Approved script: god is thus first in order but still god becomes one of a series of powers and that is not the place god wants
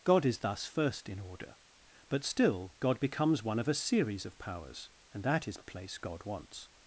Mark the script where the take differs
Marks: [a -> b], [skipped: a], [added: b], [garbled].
god is thus first in order but still god becomes one of a series of powers and that is [skipped: not] the place god wants